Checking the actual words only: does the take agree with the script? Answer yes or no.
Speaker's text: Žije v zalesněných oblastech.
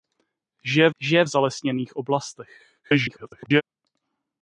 no